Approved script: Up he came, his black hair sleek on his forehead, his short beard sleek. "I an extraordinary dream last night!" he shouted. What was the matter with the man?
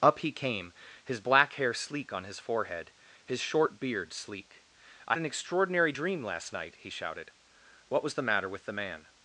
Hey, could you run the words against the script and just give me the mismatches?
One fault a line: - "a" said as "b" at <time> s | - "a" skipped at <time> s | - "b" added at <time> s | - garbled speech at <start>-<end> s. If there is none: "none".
none